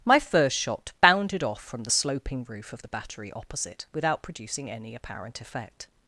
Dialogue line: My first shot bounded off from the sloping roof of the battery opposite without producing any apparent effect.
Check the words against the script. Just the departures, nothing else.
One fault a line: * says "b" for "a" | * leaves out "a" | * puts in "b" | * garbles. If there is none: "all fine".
all fine